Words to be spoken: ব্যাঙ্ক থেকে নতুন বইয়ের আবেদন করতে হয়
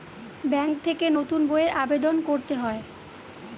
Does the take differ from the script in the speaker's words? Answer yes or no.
no